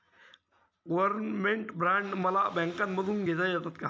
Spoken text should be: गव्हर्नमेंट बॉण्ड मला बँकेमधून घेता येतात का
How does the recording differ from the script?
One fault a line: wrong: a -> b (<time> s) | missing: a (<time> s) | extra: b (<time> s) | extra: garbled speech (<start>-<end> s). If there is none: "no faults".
no faults